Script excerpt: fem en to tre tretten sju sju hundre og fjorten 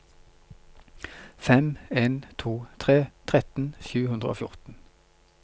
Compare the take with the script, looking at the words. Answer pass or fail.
fail